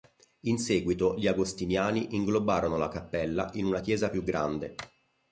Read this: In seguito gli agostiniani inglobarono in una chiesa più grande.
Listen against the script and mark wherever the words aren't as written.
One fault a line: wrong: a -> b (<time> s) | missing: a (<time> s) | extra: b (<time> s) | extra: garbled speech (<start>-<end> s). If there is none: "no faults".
extra: la cappella (2.8 s)